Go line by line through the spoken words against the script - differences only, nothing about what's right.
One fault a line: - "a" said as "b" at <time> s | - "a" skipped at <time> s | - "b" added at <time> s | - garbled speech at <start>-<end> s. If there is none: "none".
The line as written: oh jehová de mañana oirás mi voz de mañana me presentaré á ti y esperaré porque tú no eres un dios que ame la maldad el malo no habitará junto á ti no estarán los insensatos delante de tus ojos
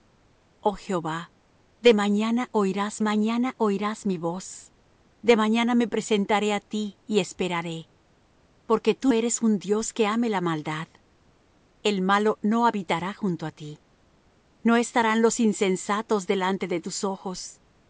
- "mañana oirás" added at 3.0 s
- "no" skipped at 9.1 s